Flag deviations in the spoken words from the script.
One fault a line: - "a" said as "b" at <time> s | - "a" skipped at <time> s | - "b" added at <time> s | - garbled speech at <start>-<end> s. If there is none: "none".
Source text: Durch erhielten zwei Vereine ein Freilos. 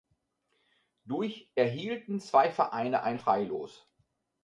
none